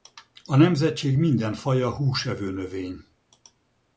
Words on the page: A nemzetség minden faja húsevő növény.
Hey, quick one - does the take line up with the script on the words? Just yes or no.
yes